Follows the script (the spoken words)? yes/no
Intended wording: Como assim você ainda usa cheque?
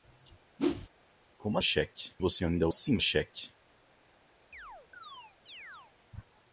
no